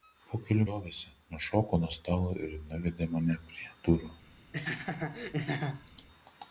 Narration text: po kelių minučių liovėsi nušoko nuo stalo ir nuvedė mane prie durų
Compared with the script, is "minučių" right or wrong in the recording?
wrong